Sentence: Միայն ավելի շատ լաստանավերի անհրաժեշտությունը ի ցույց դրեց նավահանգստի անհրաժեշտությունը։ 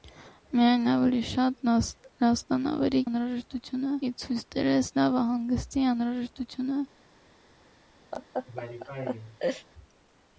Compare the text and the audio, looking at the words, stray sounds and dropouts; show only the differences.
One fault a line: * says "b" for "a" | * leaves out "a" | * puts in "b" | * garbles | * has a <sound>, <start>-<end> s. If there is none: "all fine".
* has a laugh, 8.1-9.7 s